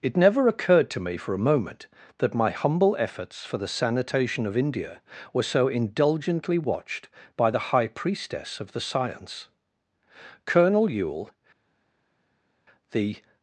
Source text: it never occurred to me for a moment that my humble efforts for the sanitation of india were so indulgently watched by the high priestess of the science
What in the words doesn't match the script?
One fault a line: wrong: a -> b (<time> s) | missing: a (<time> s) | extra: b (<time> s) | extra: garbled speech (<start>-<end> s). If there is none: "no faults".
extra: colonel yule the (10.5 s)